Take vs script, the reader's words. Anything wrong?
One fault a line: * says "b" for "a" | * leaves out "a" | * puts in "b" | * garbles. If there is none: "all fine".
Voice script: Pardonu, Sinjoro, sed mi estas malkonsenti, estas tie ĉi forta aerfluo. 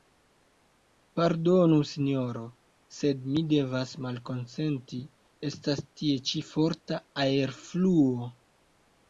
* says "devas" for "estas"